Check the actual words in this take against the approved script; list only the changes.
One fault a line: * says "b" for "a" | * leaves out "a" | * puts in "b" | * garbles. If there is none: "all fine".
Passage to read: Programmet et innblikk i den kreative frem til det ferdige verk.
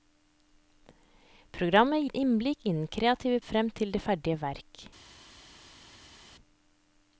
all fine